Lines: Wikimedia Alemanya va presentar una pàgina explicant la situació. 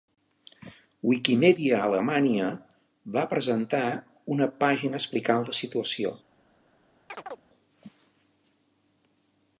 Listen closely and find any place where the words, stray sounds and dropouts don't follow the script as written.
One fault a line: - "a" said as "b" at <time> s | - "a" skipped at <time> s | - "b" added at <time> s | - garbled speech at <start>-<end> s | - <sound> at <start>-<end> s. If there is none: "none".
- chirp at 7.1-7.4 s